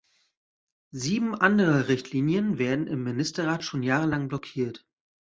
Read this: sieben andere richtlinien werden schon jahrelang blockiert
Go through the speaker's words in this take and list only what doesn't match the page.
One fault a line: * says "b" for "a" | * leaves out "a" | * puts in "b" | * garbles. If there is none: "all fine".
* puts in "im ministerrat"